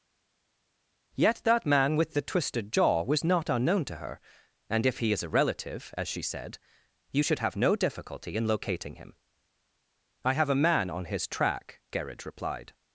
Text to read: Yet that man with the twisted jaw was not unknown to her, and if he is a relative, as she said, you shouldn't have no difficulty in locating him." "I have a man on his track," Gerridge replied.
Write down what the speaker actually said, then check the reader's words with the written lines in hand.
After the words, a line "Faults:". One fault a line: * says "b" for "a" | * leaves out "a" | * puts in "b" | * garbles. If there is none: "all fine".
Yet that man with the twisted jaw was not unknown to her, and if he is a relative, as she said, you should have no difficulty in locating him." "I have a man on his track," Gerridge replied.
Faults:
* says "should" for "shouldn't"